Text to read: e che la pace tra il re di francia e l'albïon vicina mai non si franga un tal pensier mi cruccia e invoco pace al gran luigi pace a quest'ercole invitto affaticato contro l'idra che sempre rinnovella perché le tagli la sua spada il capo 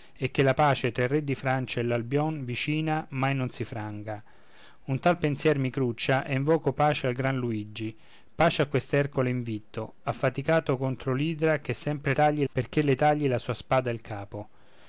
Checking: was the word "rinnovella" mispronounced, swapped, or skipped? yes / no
yes